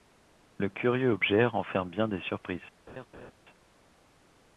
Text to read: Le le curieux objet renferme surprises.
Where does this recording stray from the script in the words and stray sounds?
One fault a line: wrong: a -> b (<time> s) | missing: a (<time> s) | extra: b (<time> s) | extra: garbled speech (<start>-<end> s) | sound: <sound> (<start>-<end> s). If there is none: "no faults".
missing: le (0.7 s)
extra: bien des (1.9 s)
sound: laugh (2.9-3.3 s)